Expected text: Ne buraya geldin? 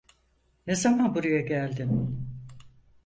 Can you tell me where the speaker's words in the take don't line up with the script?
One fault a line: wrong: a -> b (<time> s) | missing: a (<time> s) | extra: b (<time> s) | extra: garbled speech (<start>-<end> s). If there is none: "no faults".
extra: zaman (0.8 s)